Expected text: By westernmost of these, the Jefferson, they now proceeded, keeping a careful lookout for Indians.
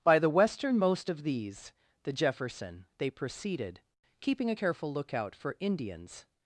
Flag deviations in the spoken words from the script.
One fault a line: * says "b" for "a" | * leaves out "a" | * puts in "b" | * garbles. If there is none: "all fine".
* puts in "the"
* leaves out "now"